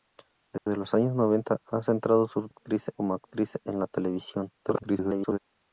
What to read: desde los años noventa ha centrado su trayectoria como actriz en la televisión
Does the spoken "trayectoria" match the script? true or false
false